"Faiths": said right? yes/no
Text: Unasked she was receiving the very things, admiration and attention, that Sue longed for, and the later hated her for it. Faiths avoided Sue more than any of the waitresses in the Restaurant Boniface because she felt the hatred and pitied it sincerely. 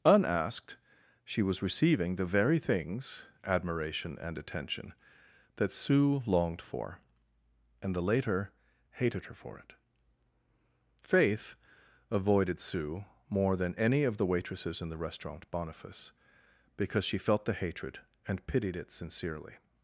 no